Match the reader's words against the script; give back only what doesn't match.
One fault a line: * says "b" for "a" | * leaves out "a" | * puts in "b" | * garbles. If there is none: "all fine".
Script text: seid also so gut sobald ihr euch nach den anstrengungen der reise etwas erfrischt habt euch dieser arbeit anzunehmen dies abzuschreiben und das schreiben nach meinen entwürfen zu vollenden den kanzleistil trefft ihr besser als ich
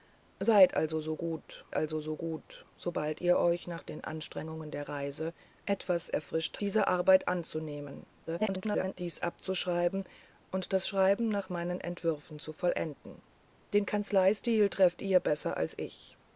* puts in "also so gut"
* leaves out "habt euch"
* garbles